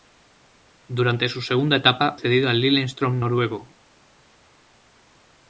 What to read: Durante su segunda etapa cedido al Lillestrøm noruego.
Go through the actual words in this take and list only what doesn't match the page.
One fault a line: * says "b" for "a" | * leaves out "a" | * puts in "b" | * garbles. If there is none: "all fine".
all fine